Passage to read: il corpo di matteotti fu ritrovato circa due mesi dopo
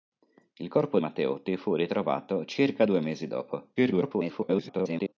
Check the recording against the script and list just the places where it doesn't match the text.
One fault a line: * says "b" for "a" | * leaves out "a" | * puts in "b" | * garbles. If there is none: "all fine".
* leaves out "di"
* garbles